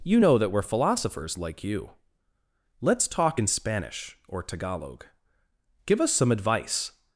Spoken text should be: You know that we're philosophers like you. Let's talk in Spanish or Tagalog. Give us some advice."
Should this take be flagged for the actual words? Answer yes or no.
no